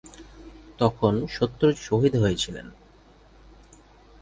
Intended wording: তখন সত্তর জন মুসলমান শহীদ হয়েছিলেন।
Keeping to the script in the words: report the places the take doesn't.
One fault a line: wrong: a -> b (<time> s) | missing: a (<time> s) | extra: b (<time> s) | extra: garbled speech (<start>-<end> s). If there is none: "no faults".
missing: জন মুসলমান (1.7 s)